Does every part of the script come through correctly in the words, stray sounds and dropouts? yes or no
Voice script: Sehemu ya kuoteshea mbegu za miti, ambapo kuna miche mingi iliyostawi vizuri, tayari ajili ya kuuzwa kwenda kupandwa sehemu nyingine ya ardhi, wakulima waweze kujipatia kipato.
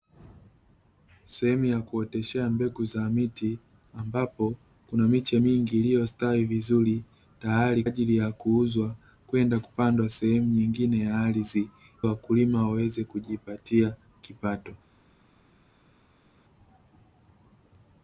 yes